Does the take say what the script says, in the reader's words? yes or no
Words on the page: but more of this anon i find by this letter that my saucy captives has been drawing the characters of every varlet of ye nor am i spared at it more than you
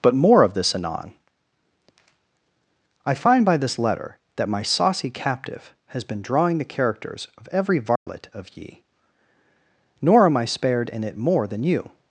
no